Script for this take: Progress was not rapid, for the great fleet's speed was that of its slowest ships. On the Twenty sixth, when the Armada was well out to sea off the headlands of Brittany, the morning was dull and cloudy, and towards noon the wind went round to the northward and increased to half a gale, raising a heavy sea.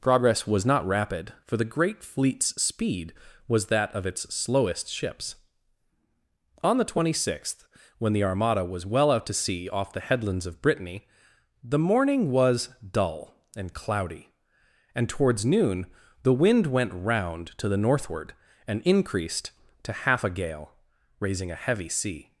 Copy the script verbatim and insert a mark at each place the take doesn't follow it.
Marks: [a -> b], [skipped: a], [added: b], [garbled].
Progress was not rapid, for the great fleet's speed was that of its slowest ships. On the Twenty sixth, when the Armada was well out to sea off the headlands of Brittany, the morning was dull and cloudy, and towards noon the wind went round to the northward and increased to half a gale, raising a heavy sea.